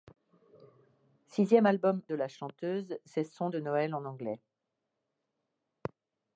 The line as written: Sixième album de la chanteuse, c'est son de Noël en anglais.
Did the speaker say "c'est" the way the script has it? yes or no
yes